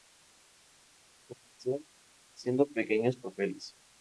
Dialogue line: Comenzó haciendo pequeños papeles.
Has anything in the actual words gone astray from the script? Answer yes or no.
no